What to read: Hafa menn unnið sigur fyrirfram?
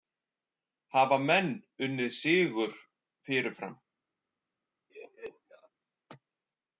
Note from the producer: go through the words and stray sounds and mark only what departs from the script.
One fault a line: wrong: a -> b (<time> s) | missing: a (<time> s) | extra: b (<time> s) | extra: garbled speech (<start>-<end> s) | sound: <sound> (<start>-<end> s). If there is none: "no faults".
sound: laugh (4.9-5.7 s)